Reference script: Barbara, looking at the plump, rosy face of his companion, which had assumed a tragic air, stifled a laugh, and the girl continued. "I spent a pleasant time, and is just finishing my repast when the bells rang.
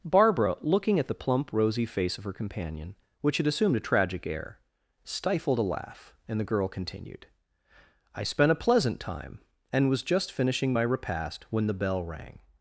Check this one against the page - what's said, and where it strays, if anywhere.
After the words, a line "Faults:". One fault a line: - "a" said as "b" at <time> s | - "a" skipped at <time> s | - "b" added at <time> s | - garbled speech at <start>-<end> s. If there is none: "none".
Barbara, looking at the plump, rosy face of her companion, which had assumed a tragic air, stifled a laugh, and the girl continued. "I spent a pleasant time, and was just finishing my repast when the bell rang.
Faults:
- "his" said as "her" at 2.2 s
- "is" said as "was" at 9.9 s
- "bells" said as "bell" at 11.7 s